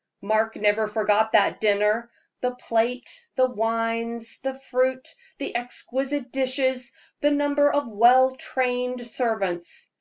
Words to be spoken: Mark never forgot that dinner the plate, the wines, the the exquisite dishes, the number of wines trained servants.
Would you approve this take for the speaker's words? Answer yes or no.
no